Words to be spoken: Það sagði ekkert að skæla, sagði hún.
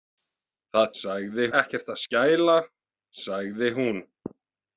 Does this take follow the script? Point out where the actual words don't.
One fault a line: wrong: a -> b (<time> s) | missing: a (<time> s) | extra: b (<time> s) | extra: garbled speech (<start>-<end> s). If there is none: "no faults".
no faults